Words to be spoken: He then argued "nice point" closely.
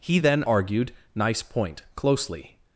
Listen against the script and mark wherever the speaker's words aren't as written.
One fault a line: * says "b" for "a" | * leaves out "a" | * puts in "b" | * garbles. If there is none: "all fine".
all fine